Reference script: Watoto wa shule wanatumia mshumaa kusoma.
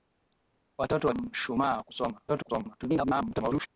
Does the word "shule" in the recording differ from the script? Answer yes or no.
yes